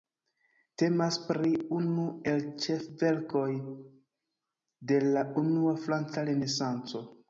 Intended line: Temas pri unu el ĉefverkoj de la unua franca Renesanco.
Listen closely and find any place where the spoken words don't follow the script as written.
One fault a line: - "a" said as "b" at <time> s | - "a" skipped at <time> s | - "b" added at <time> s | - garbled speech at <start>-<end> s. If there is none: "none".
none